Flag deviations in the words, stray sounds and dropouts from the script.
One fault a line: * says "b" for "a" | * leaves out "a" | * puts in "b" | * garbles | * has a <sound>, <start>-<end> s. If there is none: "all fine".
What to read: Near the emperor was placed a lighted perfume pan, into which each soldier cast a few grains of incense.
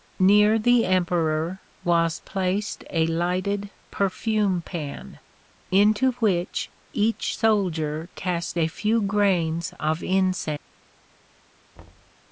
* has a thud, 11.7-12.1 s